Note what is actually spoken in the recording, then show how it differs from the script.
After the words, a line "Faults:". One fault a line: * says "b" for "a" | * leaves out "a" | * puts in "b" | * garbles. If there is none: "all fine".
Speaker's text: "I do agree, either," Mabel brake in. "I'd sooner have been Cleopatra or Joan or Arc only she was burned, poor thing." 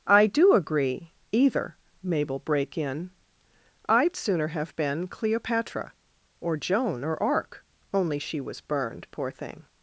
"I do agree, either," Mabel brake in. "I'd sooner have been Cleopatra or Joan or Arc only she was burned, poor thing."
Faults:
all fine